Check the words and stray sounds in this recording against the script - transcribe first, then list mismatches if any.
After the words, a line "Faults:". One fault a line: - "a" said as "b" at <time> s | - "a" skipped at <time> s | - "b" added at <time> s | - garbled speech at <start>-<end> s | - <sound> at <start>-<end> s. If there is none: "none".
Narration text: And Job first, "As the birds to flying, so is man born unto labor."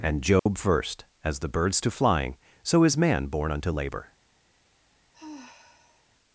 And Job first, "As the birds to flying, so is man born unto labor."
Faults:
- dropout at 0.4-0.5 s
- sigh at 5.1-6.1 s